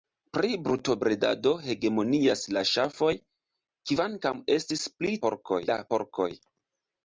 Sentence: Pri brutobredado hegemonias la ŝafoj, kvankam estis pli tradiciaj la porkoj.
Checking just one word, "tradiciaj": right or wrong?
wrong